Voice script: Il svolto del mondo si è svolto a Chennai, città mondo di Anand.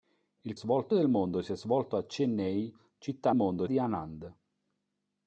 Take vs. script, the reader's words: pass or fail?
pass